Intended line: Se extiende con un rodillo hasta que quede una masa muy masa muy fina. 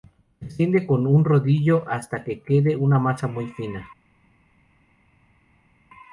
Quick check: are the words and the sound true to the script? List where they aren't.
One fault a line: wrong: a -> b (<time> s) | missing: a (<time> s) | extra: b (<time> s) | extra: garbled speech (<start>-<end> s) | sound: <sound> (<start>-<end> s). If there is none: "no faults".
missing: masa muy (3.5 s)